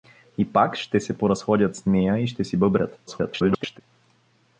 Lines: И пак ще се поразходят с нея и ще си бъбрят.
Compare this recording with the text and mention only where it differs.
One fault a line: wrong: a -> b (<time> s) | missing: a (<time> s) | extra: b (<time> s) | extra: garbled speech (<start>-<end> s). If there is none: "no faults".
extra: garbled speech (3.1-3.8 s)